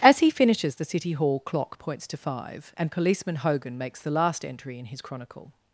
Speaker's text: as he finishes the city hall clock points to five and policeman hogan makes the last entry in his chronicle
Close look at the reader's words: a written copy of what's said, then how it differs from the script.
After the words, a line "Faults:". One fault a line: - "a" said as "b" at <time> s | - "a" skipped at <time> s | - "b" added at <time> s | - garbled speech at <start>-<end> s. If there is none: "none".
as he finishes the city hall clock points to five and policeman hogan makes the last entry in his chronicle
Faults:
none